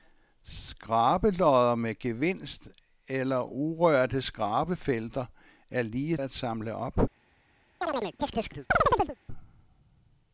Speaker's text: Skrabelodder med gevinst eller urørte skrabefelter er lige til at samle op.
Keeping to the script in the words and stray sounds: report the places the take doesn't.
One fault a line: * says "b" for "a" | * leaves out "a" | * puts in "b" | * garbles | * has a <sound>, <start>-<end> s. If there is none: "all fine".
* leaves out "til"
* has a chirp, 7.8-9.2 s